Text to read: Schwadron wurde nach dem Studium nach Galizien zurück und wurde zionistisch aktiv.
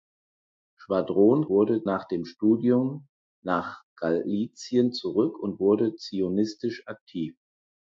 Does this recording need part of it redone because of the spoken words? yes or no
no